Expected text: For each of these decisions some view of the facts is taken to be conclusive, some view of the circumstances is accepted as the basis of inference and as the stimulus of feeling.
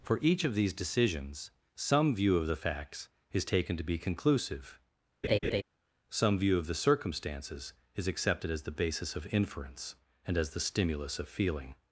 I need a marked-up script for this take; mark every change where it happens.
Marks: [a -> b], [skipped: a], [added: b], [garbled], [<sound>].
For each of these decisions some view of the facts is taken to be conclusive, [laugh] some view of the circumstances is accepted as the basis of inference and as the stimulus of feeling.